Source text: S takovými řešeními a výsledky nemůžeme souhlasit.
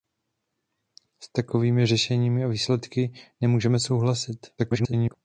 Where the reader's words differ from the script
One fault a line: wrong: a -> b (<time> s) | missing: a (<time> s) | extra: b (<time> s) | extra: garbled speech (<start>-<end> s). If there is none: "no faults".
extra: garbled speech (4.6-5.1 s)